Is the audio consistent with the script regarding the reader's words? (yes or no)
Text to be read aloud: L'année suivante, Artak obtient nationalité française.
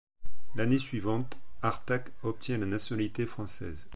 no